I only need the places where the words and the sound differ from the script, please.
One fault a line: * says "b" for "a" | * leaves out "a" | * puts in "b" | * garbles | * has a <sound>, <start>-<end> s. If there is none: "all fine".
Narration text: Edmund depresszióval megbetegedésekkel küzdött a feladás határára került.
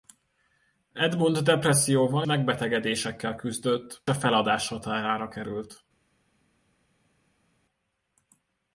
all fine